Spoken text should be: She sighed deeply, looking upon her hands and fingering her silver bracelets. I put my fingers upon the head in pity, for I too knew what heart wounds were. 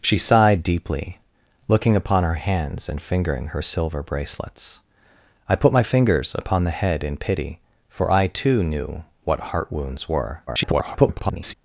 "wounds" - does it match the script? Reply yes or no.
yes